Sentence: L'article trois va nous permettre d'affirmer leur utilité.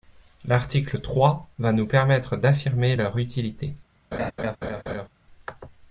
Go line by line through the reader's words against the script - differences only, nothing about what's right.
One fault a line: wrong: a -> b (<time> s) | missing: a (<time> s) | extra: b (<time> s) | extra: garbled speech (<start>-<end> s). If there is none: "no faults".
no faults